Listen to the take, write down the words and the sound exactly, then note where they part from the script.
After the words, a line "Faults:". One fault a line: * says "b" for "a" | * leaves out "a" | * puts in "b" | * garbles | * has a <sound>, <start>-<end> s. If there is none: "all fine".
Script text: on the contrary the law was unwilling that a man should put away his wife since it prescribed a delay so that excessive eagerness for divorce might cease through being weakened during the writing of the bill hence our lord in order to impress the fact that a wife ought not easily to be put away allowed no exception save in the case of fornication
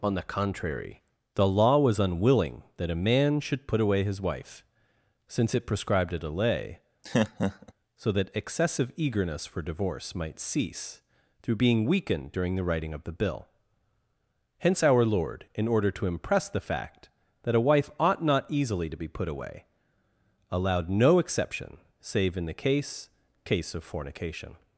on the contrary the law was unwilling that a man should put away his wife since it prescribed a delay so that excessive eagerness for divorce might cease through being weakened during the writing of the bill hence our lord in order to impress the fact that a wife ought not easily to be put away allowed no exception save in the case case of fornication
Faults:
* has a laugh, 7.0-7.7 s
* puts in "case"